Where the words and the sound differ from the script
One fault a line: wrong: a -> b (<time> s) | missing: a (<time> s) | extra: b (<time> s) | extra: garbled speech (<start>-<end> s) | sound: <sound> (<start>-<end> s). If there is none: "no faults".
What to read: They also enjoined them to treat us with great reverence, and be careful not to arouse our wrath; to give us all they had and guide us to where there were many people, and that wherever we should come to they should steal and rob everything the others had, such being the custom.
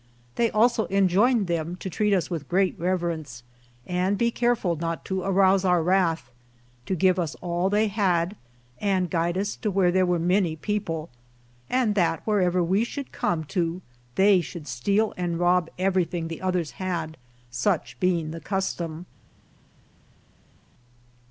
no faults